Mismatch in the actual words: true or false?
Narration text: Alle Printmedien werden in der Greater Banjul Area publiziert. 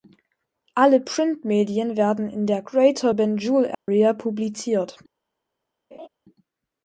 false